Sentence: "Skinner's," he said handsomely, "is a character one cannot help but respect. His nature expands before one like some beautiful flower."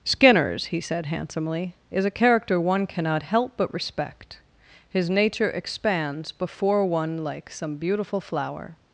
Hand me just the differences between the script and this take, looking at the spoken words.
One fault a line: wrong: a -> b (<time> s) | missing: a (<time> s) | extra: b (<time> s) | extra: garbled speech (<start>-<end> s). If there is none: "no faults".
no faults